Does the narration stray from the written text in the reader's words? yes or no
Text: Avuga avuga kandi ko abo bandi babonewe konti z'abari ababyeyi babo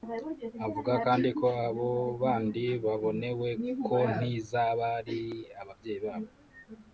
yes